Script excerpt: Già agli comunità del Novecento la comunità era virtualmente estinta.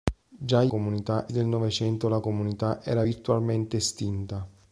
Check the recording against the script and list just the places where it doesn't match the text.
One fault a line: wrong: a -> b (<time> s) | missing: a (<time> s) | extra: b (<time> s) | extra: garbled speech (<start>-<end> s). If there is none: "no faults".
no faults